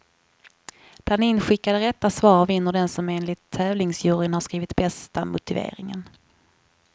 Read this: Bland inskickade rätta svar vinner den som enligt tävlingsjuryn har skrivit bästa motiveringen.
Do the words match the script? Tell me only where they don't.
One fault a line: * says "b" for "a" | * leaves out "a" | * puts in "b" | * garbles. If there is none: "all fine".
all fine